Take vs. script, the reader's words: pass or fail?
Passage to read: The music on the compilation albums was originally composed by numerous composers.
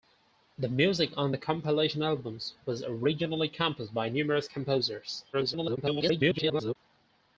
fail